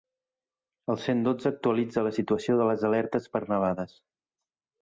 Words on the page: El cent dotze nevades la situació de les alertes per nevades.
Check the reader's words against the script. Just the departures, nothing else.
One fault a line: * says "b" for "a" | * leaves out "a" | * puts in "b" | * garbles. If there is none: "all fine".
* says "actualitza" for "nevades"